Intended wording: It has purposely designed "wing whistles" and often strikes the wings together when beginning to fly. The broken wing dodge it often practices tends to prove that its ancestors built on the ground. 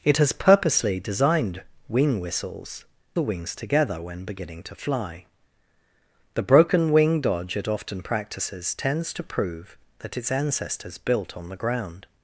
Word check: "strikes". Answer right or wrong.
wrong